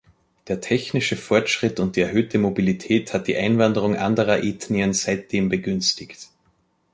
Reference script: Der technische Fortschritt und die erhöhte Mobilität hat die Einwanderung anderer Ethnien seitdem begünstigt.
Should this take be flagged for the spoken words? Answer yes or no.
no